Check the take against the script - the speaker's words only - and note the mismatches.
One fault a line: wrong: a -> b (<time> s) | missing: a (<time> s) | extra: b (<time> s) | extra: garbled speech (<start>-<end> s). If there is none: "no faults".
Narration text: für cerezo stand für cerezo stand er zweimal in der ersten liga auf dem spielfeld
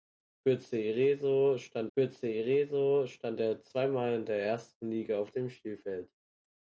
no faults